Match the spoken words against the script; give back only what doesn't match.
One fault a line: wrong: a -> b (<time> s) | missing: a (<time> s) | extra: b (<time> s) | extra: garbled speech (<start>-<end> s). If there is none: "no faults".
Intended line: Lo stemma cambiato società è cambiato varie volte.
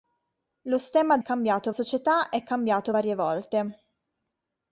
no faults